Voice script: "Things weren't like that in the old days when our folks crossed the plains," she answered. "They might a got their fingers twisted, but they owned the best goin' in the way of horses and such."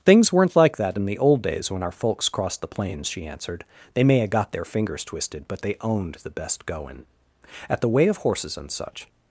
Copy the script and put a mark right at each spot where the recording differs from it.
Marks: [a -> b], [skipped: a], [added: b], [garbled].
"Things weren't like that in the old days when our folks crossed the plains," she answered. "They [might -> may] a got their fingers twisted, but they owned the best goin' [in -> at] the way of horses and such."